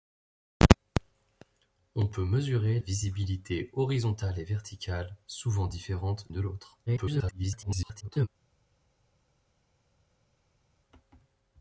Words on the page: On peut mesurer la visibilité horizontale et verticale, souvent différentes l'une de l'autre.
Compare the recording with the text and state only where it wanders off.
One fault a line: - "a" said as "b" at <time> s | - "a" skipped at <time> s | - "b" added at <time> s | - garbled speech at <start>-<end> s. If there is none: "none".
- "la" skipped at 2.8 s
- "l'une" skipped at 6.3 s
- garbled speech at 6.9-8.3 s